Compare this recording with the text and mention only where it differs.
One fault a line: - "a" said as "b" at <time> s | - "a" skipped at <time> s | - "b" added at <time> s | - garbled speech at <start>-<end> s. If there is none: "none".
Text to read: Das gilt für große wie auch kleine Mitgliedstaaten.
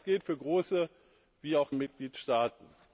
- "kleine" skipped at 1.7 s